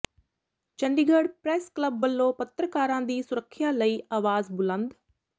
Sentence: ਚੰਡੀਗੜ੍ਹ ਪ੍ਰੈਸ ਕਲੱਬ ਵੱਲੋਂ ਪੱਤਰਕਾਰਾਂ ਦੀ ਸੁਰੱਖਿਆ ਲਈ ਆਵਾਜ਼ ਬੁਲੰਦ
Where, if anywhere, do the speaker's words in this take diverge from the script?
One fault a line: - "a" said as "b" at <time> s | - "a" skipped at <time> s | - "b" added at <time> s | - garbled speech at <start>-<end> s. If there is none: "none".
none